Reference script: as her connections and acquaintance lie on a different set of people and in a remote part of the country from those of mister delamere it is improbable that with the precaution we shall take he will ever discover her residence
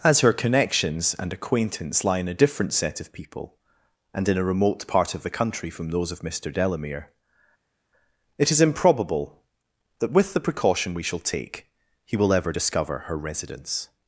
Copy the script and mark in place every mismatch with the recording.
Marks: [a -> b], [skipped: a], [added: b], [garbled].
as her connections and acquaintance lie [on -> in] a different set of people and in a remote part of the country from those of mister delamere it is improbable that with the precaution we shall take he will ever discover her residence